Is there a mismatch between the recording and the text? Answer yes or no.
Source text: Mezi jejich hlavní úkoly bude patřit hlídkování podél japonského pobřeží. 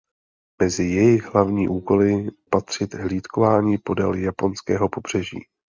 yes